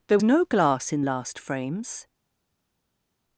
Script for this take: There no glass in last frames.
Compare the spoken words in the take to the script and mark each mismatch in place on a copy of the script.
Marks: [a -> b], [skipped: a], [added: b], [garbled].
There no glass in last frames.